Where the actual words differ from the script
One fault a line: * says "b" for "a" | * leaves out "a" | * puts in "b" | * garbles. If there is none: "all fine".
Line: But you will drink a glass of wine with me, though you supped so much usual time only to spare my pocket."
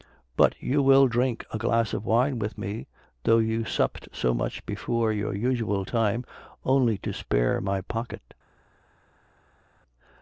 * puts in "before your"